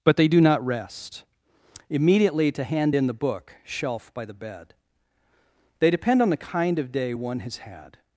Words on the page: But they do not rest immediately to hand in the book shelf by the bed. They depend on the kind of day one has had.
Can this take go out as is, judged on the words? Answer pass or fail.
pass